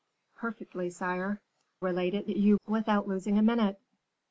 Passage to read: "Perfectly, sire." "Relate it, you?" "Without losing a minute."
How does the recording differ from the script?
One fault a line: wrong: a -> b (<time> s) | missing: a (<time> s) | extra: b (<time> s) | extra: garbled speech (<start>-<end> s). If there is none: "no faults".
no faults